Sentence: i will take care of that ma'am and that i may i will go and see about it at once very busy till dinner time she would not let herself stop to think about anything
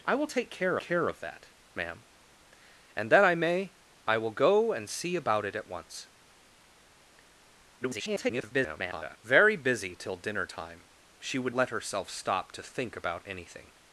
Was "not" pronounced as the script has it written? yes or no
no